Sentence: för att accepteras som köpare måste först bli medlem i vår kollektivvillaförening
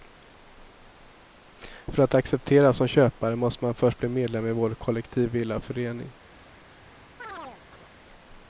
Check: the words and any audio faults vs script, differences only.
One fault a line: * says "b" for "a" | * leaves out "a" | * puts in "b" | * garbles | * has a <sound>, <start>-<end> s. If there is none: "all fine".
* puts in "man"
* has a chirp, 7.2-7.9 s